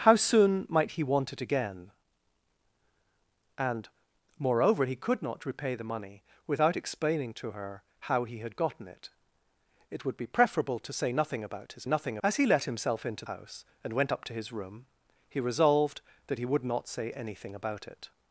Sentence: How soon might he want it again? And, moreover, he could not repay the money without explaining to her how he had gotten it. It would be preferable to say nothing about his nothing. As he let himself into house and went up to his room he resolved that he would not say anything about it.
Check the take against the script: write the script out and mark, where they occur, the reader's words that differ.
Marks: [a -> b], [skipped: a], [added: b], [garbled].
How soon might he want it again? And, moreover, he could not repay the money without explaining to her how he had gotten it. It would be preferable to say nothing about his nothing. As he let himself into house and went up to his room he resolved that he would not say anything about it.